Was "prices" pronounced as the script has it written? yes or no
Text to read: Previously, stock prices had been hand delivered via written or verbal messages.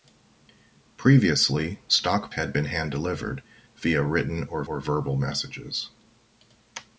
no